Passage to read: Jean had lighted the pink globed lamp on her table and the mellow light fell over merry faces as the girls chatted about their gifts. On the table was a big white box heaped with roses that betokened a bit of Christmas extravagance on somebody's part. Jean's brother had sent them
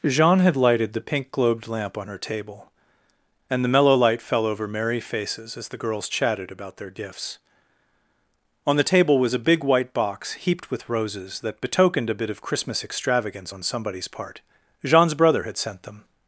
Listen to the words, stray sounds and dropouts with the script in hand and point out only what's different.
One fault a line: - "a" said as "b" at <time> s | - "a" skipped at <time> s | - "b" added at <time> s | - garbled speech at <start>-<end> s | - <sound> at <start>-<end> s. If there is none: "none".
none